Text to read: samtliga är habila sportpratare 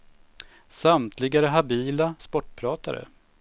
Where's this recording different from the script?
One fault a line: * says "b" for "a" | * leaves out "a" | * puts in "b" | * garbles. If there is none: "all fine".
all fine